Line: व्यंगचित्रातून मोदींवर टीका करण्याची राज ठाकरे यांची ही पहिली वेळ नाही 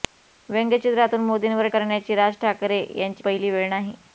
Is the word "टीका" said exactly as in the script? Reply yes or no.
no